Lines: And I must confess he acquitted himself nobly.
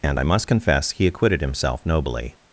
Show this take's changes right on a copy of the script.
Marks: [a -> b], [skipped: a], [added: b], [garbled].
And I must confess he acquitted himself nobly.